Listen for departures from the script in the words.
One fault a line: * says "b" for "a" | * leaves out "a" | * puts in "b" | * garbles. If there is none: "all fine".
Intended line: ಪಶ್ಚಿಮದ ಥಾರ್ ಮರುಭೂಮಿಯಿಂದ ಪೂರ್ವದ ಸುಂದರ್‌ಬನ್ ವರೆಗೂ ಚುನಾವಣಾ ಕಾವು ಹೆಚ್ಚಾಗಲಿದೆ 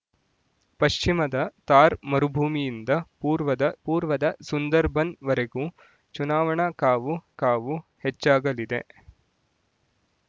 * puts in "ಪೂರ್ವದ"
* puts in "ಕಾವು"